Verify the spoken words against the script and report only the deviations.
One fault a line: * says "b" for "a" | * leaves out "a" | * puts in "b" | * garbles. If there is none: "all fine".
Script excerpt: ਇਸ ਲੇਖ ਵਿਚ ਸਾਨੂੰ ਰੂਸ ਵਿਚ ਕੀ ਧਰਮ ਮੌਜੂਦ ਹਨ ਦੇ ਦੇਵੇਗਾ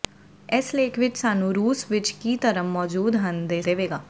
all fine